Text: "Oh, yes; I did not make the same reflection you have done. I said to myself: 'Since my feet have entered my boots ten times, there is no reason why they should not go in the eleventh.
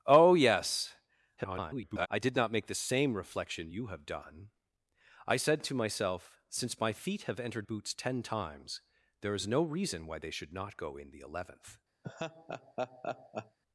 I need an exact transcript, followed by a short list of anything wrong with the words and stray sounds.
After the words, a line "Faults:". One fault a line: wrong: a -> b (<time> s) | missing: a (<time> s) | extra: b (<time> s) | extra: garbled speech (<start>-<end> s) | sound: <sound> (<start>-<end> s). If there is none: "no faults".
"Oh, yes; [garbled] I did not make the same reflection you have done. I said to myself: 'Since my feet have entered boots ten times, there is no reason why they should not go in the eleventh.
Faults:
extra: garbled speech (1.4-2.1 s)
missing: my (7.7 s)
sound: laugh (12.0-13.6 s)